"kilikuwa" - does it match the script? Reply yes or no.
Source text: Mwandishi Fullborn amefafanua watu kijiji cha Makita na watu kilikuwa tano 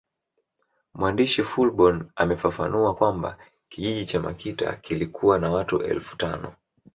no